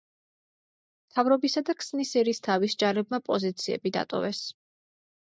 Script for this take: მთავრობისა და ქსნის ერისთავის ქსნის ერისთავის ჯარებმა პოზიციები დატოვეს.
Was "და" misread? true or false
false